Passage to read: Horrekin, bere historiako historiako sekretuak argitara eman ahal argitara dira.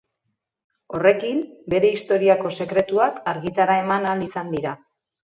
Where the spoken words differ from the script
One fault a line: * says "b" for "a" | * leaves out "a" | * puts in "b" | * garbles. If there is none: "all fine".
* leaves out "historiako"
* says "izan" for "argitara"